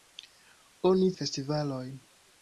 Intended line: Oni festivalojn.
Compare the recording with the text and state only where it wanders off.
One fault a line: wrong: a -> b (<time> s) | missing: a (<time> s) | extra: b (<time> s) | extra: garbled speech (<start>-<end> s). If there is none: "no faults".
no faults